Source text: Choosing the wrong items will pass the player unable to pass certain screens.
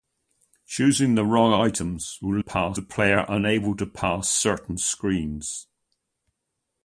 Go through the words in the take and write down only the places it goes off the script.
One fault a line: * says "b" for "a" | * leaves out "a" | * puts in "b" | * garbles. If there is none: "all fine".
all fine